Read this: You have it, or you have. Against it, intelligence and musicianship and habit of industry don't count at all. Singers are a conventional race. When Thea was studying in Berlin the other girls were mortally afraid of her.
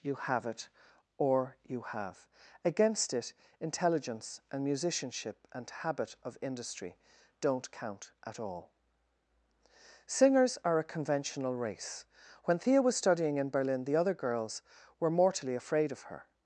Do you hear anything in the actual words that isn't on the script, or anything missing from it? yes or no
no